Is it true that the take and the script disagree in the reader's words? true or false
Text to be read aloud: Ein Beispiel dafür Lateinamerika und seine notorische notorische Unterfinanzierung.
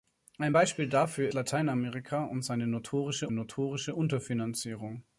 false